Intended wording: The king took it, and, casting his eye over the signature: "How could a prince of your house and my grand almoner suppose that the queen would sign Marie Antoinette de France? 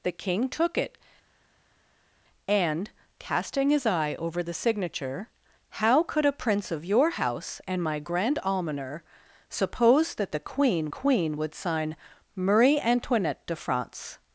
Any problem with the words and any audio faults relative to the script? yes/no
yes